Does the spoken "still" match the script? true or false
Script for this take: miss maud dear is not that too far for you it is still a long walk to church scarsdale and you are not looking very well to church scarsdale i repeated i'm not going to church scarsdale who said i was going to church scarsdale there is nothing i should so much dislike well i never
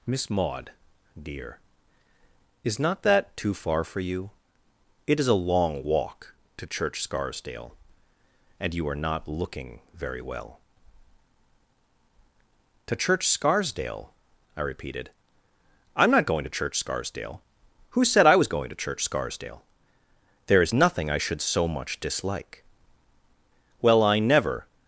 false